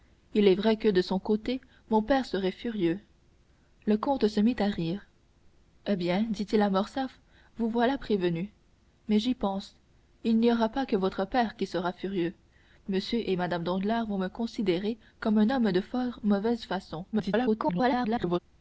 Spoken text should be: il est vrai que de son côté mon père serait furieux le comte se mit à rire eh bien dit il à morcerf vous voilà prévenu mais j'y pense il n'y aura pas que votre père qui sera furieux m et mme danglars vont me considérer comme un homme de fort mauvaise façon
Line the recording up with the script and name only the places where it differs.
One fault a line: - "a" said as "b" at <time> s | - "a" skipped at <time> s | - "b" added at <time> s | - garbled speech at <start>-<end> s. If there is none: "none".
- garbled speech at 17.1-18.4 s